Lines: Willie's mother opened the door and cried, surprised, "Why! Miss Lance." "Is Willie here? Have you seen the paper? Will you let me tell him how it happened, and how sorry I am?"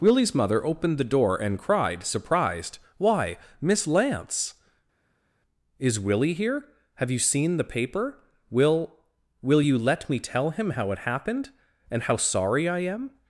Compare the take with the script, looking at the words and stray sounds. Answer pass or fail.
fail